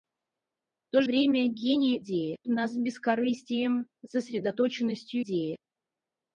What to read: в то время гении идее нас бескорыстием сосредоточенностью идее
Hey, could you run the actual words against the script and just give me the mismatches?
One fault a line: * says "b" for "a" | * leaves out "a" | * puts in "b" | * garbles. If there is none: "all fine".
all fine